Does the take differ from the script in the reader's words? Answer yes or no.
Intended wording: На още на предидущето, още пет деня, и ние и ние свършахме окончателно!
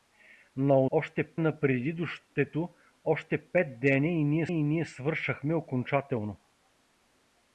no